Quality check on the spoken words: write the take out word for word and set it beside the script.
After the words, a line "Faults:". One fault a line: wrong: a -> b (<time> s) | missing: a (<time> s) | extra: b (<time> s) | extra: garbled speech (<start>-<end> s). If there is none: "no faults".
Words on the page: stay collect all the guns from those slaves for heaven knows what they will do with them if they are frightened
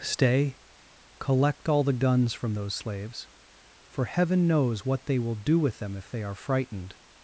stay collect all the guns from those slaves for heaven knows what they will do with them if they are frightened
Faults:
no faults